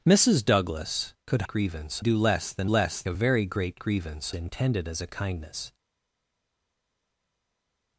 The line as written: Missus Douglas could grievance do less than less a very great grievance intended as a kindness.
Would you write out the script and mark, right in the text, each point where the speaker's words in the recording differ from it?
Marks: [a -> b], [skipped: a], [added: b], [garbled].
Missus Douglas could grievance do less than less a very great grievance intended as a kindness.